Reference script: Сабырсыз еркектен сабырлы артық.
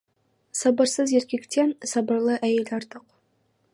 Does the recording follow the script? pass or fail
fail